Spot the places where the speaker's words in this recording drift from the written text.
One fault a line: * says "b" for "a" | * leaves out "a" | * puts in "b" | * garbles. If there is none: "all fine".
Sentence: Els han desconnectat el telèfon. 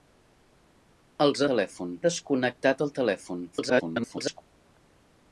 * says "telèfon" for "han"
* garbles